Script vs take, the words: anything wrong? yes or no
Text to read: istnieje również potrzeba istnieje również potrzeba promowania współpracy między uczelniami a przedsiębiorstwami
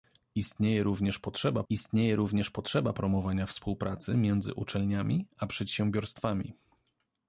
no